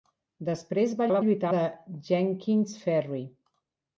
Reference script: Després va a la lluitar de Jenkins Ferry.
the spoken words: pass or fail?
pass